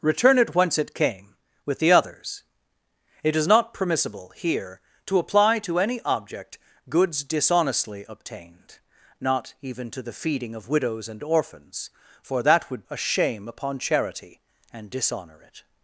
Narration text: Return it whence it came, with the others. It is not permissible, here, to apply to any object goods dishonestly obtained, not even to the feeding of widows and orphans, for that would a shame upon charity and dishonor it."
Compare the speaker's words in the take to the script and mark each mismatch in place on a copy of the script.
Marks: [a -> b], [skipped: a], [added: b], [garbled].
Return it whence it came, with the others. It is not permissible, here, to apply to any object goods dishonestly obtained, not even to the feeding of widows and orphans, for that would a shame upon charity and dishonor it."